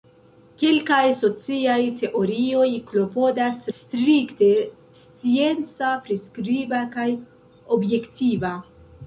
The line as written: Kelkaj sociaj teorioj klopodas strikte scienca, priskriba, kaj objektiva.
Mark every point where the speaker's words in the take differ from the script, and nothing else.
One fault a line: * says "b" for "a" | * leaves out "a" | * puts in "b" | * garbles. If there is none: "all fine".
all fine